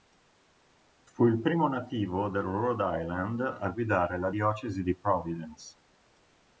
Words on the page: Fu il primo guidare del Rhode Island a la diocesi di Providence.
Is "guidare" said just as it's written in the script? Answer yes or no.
no